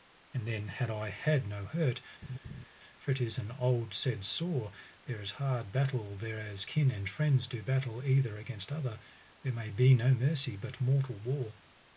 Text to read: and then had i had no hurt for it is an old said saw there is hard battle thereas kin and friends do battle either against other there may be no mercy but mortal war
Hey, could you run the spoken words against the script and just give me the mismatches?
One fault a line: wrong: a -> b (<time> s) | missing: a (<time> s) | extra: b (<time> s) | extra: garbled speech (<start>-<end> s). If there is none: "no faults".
no faults